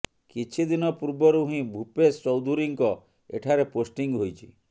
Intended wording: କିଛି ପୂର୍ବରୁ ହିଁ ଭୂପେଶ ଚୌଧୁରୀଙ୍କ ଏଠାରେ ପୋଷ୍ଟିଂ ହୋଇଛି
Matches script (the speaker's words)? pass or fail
fail